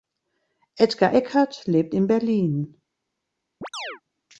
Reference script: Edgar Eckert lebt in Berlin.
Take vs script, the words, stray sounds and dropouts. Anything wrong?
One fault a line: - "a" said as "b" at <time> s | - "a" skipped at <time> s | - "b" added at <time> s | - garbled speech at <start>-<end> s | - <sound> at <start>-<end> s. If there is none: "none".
- chirp at 3.6-4.0 s